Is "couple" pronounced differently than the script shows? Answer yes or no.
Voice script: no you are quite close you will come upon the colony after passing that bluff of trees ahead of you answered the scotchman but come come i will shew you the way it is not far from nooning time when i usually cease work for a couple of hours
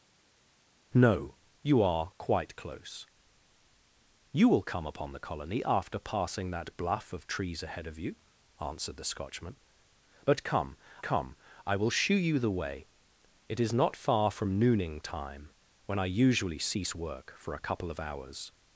no